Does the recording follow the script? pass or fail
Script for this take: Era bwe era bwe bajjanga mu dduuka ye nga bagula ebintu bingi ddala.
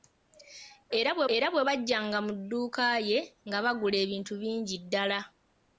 pass